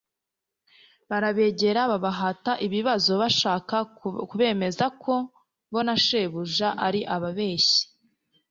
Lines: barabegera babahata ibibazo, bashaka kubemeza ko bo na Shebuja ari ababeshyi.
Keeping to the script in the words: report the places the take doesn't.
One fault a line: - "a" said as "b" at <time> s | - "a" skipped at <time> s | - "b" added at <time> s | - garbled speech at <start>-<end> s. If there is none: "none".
none